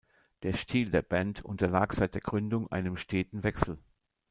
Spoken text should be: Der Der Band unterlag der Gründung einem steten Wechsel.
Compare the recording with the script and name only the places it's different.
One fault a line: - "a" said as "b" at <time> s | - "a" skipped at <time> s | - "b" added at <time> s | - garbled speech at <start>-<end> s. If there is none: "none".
- "Stil" added at 0.5 s
- "seit" added at 1.9 s